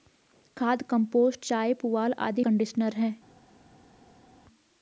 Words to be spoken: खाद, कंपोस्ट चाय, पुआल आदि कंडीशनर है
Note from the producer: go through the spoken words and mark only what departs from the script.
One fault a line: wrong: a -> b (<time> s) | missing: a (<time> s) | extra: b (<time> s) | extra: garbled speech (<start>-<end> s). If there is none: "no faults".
no faults